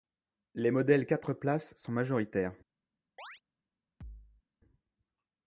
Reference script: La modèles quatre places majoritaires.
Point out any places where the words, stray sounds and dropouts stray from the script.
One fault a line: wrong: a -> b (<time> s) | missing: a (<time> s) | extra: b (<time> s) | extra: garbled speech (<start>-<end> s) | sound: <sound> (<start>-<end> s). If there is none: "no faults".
wrong: La -> Les (0.6 s)
extra: sont (1.8 s)
sound: chirp (3.2-3.4 s)
sound: thud (4.0-4.4 s)